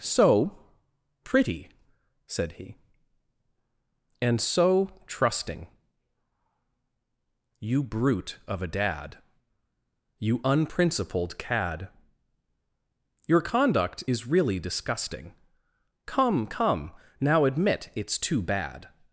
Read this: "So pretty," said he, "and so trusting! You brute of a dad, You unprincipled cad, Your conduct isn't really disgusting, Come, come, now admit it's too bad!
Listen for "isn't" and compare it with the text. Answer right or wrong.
wrong